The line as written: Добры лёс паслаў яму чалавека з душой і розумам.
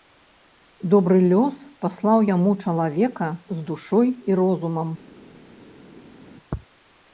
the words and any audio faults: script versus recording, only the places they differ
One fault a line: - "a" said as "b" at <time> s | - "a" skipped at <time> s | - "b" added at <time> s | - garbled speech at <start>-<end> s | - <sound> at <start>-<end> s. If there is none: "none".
none